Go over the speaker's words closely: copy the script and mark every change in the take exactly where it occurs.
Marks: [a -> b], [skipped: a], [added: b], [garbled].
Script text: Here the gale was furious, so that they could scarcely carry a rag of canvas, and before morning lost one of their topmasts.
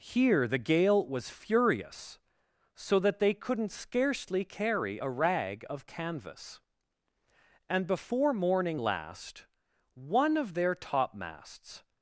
Here the gale was furious, so that they [could -> couldn't] scarcely carry a rag of canvas, and before morning [lost -> last] one of their topmasts.